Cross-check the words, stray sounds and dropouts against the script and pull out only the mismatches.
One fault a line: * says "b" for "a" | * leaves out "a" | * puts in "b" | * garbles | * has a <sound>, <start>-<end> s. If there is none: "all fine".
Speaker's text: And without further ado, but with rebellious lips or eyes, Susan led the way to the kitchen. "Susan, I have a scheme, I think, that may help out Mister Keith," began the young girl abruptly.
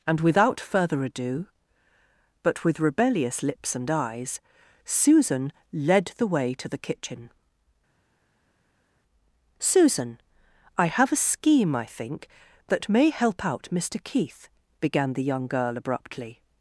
* says "and" for "or"